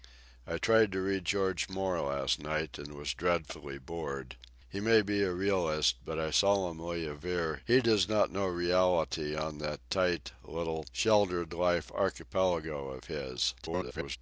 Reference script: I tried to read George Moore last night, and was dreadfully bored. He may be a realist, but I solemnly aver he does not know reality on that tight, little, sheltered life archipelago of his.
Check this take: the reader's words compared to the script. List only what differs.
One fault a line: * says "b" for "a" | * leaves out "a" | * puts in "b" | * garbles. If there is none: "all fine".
* garbles